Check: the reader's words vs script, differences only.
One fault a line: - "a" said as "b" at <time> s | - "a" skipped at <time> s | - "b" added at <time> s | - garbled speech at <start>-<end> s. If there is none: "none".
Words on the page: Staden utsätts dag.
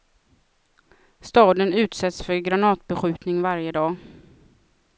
- "för granatbeskjutning varje" added at 2.2 s